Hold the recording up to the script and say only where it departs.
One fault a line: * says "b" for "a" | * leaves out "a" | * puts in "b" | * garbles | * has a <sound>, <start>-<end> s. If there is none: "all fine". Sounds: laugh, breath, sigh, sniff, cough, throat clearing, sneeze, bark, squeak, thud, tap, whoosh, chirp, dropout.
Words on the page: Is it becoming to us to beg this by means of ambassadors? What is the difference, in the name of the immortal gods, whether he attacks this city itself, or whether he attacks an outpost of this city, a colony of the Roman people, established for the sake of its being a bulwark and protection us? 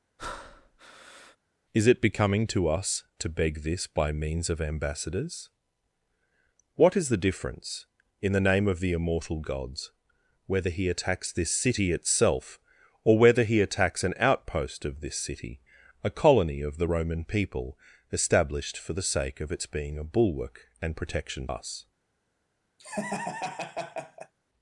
* has a breath, 0.2-1.4 s
* has a laugh, 22.8-24.3 s